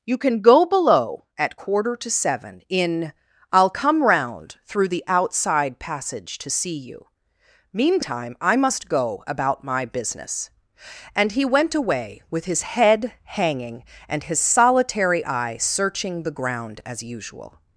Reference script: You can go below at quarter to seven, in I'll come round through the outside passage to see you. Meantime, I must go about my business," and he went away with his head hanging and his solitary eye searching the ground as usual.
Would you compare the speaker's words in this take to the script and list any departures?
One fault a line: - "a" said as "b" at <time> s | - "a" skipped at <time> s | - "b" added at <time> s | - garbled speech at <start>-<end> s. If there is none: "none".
none